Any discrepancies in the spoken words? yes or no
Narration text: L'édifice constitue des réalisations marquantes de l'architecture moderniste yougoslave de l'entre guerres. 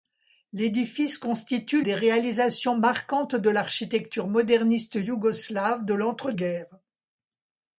no